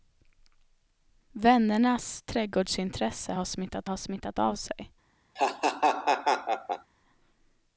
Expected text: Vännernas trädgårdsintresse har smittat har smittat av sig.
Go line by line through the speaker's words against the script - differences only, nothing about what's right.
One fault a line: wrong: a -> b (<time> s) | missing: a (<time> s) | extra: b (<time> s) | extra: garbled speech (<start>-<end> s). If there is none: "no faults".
no faults